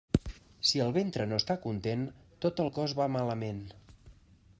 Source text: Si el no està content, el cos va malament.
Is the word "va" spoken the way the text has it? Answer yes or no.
yes